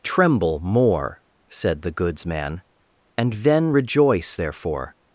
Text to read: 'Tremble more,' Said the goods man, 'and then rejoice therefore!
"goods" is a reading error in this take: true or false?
false